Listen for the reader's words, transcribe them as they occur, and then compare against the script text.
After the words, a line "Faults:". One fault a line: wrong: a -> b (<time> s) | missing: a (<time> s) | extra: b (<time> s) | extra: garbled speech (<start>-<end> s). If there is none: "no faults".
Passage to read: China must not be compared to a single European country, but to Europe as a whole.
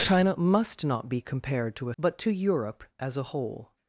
China must not be compared to a but to Europe as a whole.
Faults:
missing: single European country (1.9 s)